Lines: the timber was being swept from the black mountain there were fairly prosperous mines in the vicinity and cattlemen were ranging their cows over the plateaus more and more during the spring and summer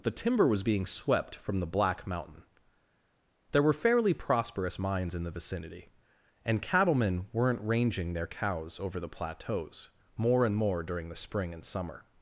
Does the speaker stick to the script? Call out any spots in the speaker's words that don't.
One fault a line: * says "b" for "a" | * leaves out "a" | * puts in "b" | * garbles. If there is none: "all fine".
* says "weren't" for "were"